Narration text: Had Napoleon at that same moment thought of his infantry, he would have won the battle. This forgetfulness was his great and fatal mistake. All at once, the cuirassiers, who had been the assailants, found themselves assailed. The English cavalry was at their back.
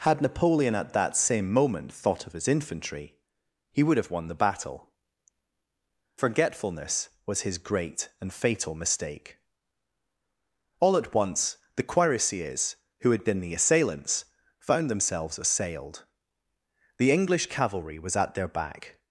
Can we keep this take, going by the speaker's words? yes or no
no